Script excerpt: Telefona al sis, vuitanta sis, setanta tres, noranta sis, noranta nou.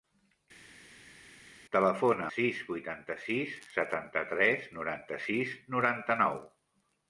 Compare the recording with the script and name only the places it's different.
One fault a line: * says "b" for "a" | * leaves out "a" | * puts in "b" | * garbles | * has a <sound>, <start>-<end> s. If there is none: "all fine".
* leaves out "al"